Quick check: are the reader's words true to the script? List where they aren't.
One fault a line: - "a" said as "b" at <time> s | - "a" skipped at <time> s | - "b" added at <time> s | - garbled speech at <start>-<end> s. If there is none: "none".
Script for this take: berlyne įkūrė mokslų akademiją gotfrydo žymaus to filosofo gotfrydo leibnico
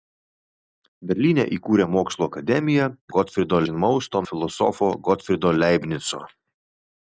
none